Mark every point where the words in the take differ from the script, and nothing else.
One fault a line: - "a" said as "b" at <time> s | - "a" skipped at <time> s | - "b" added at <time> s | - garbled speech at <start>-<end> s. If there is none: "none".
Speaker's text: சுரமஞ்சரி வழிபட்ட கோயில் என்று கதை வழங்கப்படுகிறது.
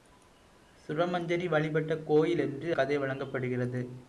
none